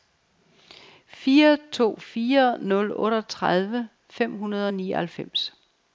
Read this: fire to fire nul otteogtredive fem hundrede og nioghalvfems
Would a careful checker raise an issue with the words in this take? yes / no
no